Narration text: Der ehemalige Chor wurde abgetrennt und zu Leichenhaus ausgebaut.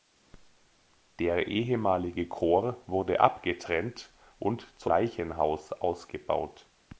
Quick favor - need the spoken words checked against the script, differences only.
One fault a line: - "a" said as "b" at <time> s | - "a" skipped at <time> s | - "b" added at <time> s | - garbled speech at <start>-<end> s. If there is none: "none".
none